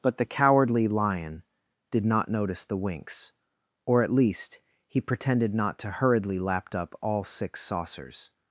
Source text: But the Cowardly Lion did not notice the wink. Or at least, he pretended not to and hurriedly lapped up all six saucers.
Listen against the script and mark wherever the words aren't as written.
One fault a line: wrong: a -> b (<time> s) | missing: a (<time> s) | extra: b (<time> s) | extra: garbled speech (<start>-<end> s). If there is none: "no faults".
wrong: wink -> winks (2.8 s)
missing: and (5.9 s)